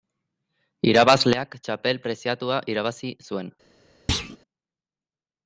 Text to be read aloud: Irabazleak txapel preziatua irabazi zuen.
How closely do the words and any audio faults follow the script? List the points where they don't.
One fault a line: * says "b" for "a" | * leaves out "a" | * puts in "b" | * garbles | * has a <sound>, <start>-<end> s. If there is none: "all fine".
* has a thud, 4.1-4.4 s